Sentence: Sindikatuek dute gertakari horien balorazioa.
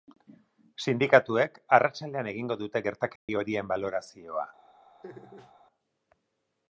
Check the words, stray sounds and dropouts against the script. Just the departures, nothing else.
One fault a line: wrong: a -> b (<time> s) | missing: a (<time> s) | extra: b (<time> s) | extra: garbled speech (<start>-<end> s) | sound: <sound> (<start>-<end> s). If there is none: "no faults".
extra: arratsaldean egingo (1.8 s)
sound: dropout (3.2-3.3 s)
sound: laugh (5.0-5.5 s)